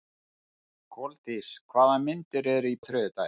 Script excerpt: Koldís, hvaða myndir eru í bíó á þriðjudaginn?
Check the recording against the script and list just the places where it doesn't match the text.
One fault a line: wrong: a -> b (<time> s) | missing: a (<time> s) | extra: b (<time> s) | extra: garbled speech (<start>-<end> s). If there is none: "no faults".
missing: bíó (2.8 s)